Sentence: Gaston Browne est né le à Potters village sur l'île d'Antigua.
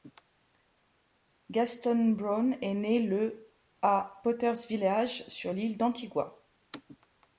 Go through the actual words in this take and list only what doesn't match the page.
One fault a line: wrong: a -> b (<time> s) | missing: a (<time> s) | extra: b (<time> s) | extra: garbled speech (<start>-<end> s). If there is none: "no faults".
no faults